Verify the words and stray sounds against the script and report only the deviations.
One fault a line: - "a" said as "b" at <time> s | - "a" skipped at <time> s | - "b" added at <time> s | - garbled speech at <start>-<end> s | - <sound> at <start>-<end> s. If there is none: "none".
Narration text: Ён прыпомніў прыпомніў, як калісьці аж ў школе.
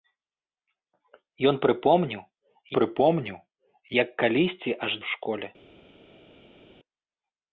none